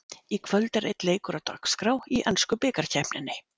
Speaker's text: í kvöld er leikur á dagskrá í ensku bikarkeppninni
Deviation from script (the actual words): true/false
true